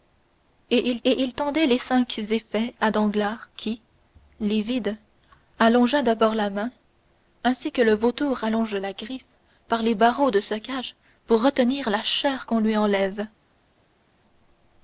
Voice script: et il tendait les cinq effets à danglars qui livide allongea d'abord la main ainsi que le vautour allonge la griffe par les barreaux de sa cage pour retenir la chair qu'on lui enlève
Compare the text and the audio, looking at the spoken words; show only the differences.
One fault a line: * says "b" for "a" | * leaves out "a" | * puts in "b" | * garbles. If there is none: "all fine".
* puts in "et il"